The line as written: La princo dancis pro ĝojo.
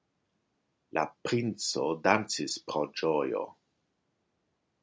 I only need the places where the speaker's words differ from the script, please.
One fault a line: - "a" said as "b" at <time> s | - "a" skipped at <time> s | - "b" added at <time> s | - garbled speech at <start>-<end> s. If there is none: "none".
none